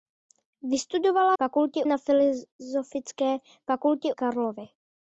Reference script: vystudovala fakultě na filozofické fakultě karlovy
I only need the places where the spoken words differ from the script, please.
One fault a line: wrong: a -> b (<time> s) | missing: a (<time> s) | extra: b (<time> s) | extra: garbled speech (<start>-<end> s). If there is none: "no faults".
no faults